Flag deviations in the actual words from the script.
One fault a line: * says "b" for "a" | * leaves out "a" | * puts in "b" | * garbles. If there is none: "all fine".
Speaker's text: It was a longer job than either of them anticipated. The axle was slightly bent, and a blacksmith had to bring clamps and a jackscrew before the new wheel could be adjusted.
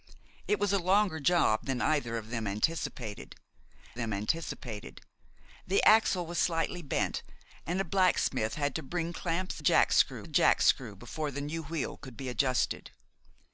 * puts in "them anticipated"
* says "jackscrew" for "and"